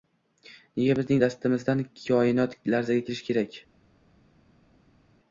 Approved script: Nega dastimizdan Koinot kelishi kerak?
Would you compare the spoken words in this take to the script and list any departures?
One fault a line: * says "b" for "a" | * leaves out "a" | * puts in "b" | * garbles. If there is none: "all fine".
* puts in "bizning"
* puts in "larzaga"